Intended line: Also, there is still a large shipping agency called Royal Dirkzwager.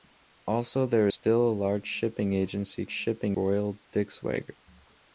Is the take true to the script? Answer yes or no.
no